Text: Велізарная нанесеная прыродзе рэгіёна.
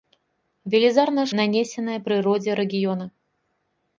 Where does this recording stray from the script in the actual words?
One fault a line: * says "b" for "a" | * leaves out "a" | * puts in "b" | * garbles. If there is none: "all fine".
all fine